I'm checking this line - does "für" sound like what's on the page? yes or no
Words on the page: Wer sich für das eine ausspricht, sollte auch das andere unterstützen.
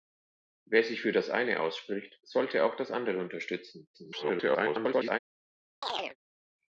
yes